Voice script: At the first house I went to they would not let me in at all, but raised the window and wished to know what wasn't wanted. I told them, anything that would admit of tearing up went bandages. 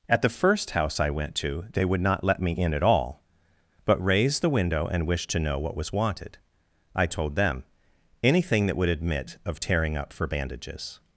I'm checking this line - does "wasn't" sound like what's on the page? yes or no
no